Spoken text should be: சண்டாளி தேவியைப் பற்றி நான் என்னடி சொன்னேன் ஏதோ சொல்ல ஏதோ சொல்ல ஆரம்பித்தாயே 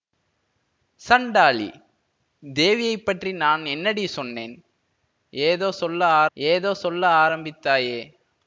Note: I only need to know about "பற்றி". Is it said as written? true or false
true